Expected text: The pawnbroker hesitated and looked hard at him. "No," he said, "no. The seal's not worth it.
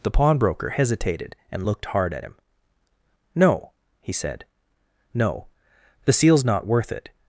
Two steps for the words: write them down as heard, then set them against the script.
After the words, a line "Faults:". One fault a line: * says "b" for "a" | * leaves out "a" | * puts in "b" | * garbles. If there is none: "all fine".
The pawnbroker hesitated and looked hard at him. "No," he said, "no. The seal's not worth it.
Faults:
all fine